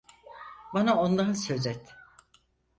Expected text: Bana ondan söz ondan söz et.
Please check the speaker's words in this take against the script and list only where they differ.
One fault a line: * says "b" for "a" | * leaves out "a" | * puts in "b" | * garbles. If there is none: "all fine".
* leaves out "ondan söz"